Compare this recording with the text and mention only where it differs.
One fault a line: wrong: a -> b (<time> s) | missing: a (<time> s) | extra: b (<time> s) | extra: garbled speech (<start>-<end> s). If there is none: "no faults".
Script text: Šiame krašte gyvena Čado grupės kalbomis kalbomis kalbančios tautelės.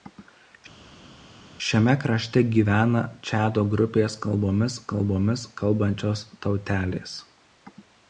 no faults